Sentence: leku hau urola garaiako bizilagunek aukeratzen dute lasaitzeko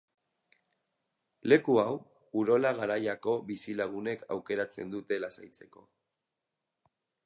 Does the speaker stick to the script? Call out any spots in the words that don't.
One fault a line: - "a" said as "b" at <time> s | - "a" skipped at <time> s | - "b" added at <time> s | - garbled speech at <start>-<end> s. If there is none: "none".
none